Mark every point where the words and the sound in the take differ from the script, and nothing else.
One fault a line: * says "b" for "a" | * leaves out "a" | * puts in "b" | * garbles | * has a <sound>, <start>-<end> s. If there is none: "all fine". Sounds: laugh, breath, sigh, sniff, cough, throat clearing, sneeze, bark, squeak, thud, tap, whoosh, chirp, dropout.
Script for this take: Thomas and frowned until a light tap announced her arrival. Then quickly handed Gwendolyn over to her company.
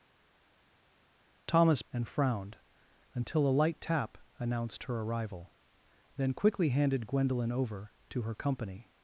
all fine